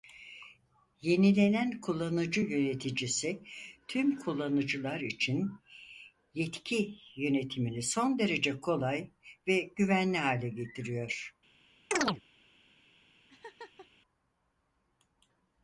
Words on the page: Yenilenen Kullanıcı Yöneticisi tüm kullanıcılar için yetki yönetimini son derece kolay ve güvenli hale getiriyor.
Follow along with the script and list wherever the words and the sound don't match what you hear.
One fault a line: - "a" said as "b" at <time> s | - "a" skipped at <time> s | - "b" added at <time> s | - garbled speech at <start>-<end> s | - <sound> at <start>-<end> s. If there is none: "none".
- chirp at 11.9-12.2 s
- laugh at 13.3-13.9 s